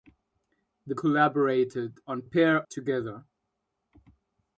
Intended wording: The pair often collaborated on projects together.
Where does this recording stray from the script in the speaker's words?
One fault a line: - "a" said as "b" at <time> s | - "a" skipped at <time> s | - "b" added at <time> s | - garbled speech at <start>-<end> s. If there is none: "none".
- "pair often" skipped at 0.9 s
- "projects" said as "pair" at 2.2 s